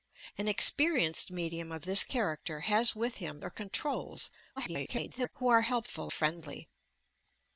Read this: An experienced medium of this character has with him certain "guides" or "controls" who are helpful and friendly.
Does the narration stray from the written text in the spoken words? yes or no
yes